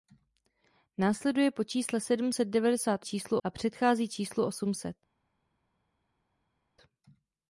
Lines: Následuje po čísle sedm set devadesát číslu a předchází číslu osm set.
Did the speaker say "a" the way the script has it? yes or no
yes